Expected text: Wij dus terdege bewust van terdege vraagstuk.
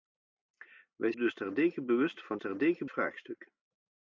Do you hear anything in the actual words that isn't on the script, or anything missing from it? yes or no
no